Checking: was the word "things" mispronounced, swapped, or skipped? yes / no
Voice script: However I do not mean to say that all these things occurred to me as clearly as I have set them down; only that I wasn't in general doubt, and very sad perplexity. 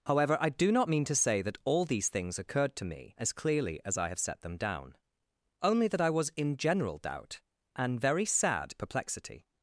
no